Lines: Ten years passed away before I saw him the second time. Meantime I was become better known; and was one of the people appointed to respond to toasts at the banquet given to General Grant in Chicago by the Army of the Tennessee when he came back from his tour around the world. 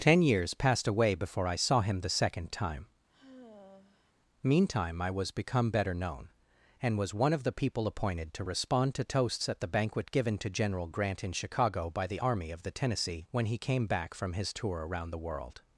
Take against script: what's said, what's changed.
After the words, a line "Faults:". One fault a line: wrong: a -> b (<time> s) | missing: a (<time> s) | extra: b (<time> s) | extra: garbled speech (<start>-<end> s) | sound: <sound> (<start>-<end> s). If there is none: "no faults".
Ten years passed away before I saw him the second time. Meantime I was become better known; and was one of the people appointed to respond to toasts at the banquet given to General Grant in Chicago by the Army of the Tennessee when he came back from his tour around the world.
Faults:
sound: sigh (3.1-4.1 s)